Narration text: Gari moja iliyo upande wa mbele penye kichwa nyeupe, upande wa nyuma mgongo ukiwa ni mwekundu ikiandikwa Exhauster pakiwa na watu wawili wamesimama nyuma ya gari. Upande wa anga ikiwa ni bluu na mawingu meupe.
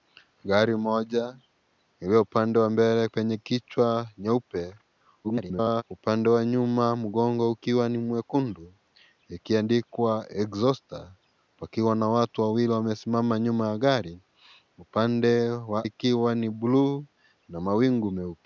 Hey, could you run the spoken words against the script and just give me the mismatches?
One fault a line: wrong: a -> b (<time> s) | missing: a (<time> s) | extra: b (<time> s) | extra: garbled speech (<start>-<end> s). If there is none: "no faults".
extra: garbled speech (5.2-5.8 s)
missing: anga (15.9 s)